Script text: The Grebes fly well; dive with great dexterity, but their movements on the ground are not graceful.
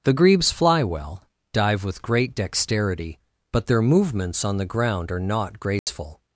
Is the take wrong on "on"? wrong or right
right